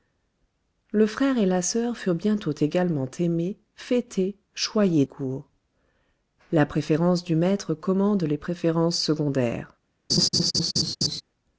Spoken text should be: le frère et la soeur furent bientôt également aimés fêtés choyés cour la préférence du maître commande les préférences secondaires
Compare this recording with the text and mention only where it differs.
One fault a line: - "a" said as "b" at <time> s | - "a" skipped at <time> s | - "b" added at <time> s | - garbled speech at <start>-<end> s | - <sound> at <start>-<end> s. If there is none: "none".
- laugh at 10.1-11.2 s